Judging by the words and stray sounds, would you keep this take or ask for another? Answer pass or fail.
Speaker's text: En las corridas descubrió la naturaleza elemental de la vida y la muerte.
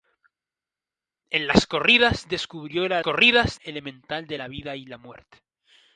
fail